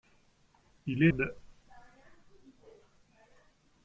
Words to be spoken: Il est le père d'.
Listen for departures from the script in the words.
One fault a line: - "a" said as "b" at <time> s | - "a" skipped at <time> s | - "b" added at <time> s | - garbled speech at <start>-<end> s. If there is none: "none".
- "le père" skipped at 1.1 s